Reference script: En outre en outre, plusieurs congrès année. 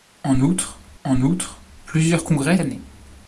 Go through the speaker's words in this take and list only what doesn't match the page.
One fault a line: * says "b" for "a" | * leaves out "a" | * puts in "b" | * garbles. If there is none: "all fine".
all fine